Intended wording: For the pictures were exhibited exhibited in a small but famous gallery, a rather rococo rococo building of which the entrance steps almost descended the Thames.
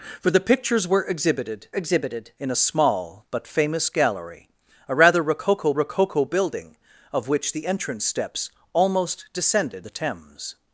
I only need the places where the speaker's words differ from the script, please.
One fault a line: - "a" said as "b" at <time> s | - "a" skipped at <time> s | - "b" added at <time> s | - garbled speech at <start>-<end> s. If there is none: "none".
none